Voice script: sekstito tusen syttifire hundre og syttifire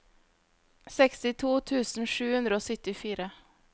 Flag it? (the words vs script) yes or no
yes